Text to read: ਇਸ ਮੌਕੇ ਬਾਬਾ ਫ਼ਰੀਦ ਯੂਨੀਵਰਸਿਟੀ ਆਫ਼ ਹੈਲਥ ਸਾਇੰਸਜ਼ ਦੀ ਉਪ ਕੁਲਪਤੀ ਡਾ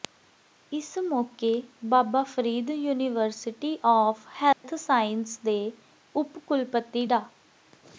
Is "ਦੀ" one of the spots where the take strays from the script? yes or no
yes